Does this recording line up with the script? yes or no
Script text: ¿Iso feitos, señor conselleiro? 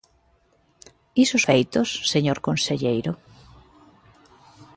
yes